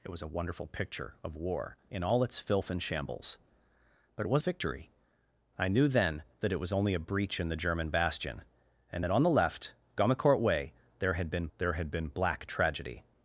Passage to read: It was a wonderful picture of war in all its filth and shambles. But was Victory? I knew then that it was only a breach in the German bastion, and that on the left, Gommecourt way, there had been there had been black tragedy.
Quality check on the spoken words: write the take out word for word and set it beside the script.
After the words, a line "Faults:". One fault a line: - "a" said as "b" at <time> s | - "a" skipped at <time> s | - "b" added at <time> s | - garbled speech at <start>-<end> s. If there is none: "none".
It was a wonderful picture of war in all its filth and shambles. But was Victory? I knew then that it was only a breach in the German bastion, and that on the left, Gommecourt way, there had been there had been black tragedy.
Faults:
none